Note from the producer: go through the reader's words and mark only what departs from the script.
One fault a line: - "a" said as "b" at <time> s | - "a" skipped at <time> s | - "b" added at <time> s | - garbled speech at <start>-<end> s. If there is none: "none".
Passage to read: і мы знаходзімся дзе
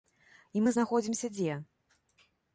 none